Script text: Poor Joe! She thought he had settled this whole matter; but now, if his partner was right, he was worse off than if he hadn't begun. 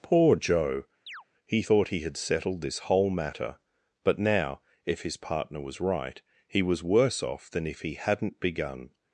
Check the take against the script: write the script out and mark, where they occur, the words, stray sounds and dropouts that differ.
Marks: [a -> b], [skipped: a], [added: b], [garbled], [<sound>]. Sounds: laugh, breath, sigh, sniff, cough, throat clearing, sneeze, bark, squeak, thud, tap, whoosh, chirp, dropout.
Poor Joe! [chirp] [She -> He] thought he had settled this whole matter; but now, if his partner was right, he was worse off than if he hadn't begun.